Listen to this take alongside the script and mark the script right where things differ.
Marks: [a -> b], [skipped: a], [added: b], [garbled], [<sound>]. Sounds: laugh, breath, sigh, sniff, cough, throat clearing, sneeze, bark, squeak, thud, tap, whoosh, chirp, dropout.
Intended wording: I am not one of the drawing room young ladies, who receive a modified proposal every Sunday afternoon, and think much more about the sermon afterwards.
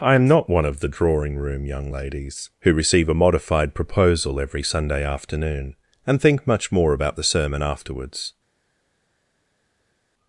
I am not one of the drawing room young ladies, who receive a modified proposal every Sunday afternoon, and think much more about the sermon afterwards.